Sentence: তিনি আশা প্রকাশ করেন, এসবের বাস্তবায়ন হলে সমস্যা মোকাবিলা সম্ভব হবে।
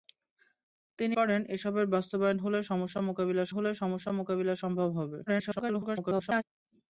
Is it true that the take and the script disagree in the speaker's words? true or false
true